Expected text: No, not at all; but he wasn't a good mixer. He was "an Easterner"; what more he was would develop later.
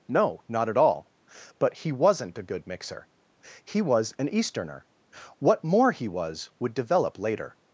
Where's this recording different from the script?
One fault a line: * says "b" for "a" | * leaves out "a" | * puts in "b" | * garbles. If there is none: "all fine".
all fine